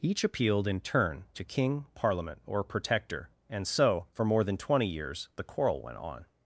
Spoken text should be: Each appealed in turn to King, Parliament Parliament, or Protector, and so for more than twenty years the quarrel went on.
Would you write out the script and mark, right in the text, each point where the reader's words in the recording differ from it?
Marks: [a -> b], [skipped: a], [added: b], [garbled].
Each appealed in turn to King, Parliament [skipped: Parliament,] or Protector, and so for more than twenty years the quarrel went on.